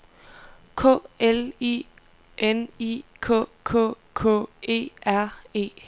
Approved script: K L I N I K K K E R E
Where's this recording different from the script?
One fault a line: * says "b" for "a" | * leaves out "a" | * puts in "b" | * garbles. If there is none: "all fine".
all fine